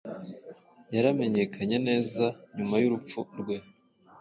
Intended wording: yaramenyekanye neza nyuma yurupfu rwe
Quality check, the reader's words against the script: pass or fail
pass